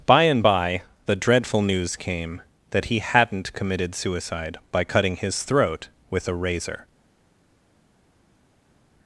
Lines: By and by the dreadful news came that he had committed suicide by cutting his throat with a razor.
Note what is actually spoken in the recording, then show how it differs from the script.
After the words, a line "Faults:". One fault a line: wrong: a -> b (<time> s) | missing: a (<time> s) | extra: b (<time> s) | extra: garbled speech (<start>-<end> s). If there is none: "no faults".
By and by the dreadful news came that he hadn't committed suicide by cutting his throat with a razor.
Faults:
wrong: had -> hadn't (3.0 s)